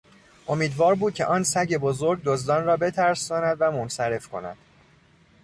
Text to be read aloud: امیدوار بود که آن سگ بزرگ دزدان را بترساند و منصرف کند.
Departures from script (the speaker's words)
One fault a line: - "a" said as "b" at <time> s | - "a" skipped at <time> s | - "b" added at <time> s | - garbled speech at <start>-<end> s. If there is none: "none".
none